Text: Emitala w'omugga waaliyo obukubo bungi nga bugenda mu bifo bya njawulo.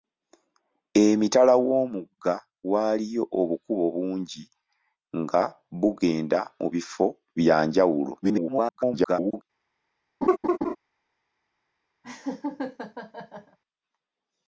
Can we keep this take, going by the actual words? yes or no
no